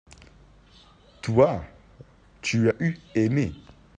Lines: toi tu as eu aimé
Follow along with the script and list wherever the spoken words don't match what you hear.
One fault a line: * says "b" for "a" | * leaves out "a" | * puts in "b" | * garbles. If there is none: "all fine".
all fine